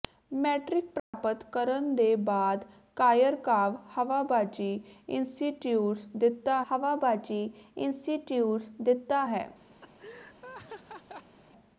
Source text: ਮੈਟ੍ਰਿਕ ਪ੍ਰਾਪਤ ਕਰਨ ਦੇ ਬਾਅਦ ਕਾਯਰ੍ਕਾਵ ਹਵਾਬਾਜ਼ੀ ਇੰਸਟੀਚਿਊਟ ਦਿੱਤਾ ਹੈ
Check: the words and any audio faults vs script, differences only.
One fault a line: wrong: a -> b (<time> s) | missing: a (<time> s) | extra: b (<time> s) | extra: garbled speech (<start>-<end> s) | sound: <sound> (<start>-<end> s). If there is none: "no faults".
sound: dropout (1.0-1.1 s)
extra: ਹਵਾਬਾਜ਼ੀ ਇੰਸਟੀਚਿਊਟ ਦਿੱਤਾ (6.7 s)
sound: laugh (9.8-11.4 s)